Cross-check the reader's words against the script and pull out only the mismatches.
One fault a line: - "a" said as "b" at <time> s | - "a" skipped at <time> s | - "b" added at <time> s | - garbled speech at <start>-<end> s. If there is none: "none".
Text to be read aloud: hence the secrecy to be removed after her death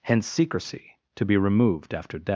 - "the" skipped at 0.3 s
- "her" skipped at 2.2 s